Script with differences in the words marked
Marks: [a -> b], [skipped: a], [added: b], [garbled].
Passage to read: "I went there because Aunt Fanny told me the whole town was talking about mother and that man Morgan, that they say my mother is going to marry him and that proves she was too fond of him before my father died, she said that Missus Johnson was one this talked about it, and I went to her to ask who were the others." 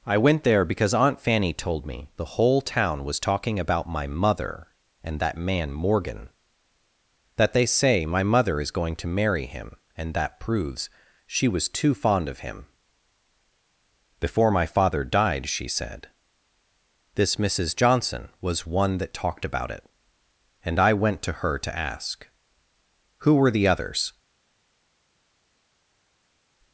"I went there because Aunt Fanny told me the whole town was talking about [added: my] mother and that man Morgan, that they say my mother is going to marry him and that proves she was too fond of him before my father died, she said [that -> this] Missus Johnson was one [this -> that] talked about it, and I went to her to ask who were the others."